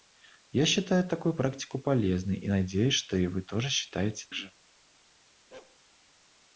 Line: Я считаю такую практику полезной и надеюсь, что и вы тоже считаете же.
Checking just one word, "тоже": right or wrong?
right